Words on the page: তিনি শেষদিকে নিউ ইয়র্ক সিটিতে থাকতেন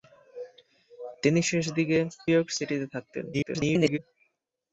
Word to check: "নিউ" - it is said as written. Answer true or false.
false